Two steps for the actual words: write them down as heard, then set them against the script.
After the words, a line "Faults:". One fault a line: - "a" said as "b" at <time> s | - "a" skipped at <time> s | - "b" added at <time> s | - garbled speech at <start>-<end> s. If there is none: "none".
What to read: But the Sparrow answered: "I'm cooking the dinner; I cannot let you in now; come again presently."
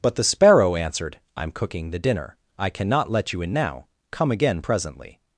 But the Sparrow answered: "I'm cooking the dinner; I cannot let you in now; come again presently."
Faults:
none